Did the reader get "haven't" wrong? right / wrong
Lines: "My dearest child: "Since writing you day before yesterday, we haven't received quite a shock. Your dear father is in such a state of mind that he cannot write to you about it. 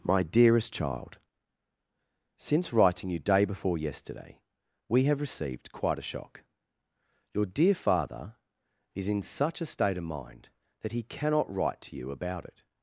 wrong